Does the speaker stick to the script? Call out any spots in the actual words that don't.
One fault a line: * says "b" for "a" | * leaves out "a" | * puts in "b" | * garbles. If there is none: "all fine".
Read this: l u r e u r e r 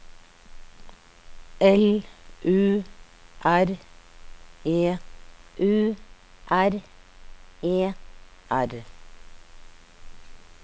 all fine